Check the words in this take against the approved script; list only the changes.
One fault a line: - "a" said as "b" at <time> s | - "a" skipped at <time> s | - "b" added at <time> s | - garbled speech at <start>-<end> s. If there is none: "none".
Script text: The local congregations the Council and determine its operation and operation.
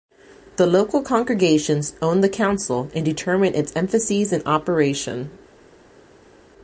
- "own" added at 2.0 s
- "operation" said as "emphases" at 3.7 s